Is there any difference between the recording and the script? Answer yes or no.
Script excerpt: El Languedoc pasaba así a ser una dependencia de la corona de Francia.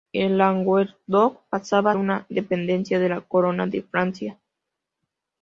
yes